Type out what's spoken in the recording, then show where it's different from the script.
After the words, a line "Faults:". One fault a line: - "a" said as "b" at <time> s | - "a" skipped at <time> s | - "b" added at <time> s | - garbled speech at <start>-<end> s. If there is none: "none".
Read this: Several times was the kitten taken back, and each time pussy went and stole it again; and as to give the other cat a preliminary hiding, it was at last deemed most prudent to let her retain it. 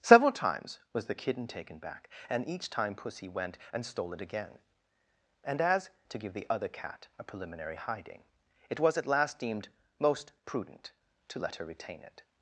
Several times was the kitten taken back, and each time pussy went and stole it again; and as to give the other cat a preliminary hiding, it was at last deemed most prudent to let her retain it.
Faults:
none